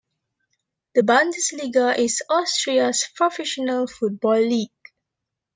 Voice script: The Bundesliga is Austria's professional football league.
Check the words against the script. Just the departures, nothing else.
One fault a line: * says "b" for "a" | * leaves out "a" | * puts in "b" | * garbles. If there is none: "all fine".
all fine